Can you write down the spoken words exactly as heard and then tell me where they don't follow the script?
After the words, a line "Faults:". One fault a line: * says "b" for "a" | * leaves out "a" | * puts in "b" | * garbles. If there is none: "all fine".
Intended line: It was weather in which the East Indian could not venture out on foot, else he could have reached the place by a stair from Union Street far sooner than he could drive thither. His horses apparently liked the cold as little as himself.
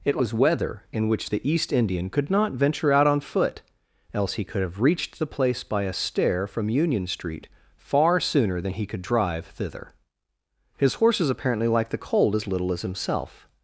It was weather in which the East Indian could not venture out on foot, else he could have reached the place by a stair from Union Street far sooner than he could drive thither. His horses apparently liked the cold as little as himself.
Faults:
all fine